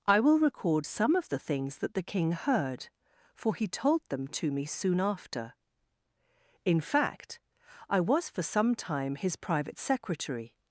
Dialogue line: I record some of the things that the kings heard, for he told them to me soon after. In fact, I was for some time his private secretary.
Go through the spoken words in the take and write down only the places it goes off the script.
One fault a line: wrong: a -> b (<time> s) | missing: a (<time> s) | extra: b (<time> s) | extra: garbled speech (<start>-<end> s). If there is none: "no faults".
extra: will (0.2 s)
wrong: kings -> king (2.0 s)